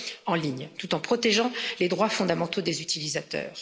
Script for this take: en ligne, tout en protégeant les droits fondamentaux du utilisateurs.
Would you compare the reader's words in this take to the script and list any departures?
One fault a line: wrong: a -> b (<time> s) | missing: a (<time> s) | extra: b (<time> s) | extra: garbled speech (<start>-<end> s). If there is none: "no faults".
wrong: du -> des (2.6 s)